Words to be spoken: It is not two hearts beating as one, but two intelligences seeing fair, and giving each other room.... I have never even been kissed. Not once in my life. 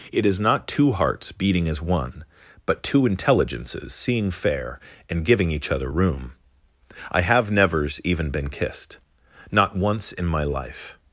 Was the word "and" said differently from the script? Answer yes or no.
no